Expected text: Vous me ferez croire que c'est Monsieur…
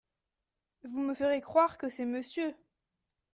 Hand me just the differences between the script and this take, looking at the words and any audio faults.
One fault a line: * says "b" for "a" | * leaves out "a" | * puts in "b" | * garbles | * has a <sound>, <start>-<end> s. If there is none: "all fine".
all fine